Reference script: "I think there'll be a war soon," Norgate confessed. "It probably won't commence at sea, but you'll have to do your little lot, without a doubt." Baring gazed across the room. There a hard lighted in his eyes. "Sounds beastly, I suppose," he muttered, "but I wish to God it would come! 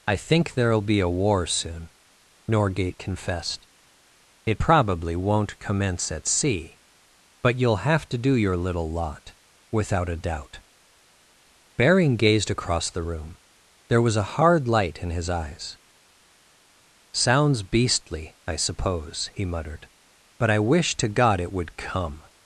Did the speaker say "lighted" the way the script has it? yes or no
no